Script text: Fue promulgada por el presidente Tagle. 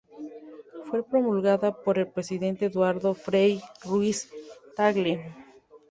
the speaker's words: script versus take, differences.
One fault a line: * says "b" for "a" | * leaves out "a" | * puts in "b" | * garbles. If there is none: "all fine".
* puts in "Eduardo Frei Ruiz"